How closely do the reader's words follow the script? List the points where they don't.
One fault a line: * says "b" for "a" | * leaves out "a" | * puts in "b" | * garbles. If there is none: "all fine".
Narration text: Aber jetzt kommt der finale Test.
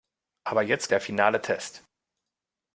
* leaves out "kommt"